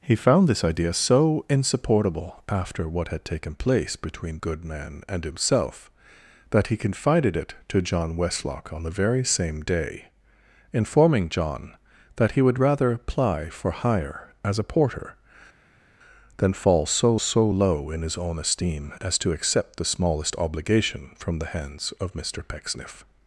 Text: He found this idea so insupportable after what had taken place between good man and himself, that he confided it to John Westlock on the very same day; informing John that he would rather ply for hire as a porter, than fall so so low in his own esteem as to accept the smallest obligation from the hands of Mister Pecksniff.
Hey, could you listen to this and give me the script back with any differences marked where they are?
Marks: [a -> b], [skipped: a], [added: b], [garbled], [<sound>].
He found this idea so insupportable after what had taken place between good man and himself, that he confided it to John Westlock on the very same day; informing John that he would rather ply for hire as a porter, than fall so so low in his own esteem as to accept the smallest obligation from the hands of Mister Pecksniff.